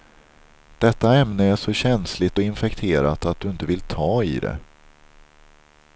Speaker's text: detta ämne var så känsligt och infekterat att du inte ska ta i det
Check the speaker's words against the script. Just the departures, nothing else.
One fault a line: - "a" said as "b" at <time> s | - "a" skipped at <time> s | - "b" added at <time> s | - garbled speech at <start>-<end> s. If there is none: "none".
- "var" said as "är" at 1.4 s
- "ska" said as "vill" at 3.6 s